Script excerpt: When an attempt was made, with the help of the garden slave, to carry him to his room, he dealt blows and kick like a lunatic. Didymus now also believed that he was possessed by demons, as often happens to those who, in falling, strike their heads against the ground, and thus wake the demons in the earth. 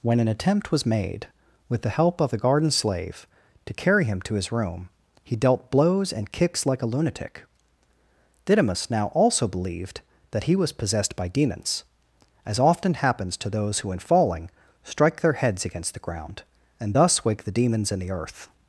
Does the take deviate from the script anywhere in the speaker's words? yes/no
yes